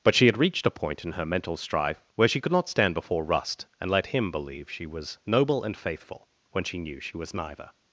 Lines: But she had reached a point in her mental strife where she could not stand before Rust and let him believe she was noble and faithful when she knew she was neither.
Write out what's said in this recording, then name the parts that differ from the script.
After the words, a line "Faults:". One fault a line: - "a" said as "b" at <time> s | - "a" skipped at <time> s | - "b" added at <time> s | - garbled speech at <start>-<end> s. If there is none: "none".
But she had reached a point in her mental strife where she could not stand before Rust and let him believe she was noble and faithful when she knew she was neither.
Faults:
none